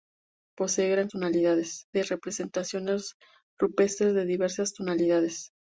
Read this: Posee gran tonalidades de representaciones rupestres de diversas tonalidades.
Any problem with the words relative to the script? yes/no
no